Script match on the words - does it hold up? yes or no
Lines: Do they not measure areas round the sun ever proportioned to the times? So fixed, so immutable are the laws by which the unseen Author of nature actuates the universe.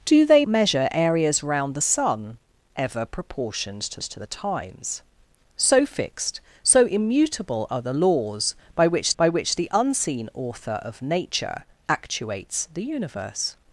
no